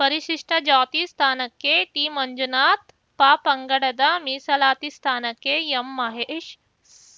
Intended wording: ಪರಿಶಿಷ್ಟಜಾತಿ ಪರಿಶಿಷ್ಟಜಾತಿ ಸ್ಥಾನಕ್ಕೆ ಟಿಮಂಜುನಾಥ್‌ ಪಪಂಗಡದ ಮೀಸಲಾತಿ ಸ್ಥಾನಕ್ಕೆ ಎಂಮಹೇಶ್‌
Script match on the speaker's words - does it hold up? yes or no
no